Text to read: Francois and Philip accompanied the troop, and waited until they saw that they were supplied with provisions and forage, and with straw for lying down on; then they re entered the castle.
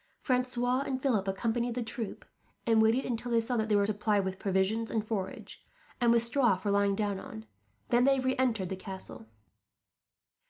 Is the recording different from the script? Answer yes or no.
no